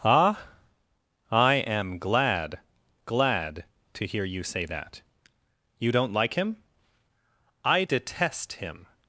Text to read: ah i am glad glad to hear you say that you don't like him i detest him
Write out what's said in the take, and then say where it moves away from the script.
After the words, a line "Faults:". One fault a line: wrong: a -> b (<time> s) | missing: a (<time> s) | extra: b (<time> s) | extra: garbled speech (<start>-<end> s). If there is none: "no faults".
ah i am glad glad to hear you say that you don't like him i detest him
Faults:
no faults